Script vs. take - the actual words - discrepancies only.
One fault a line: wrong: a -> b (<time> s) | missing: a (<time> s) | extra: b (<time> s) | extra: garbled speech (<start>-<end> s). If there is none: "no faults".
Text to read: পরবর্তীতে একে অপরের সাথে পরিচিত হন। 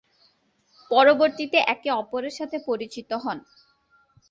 no faults